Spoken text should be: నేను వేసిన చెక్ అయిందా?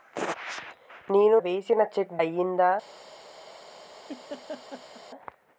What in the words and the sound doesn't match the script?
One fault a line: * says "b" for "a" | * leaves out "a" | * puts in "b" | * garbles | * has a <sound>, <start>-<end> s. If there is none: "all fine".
* has a laugh, 4.1-5.0 s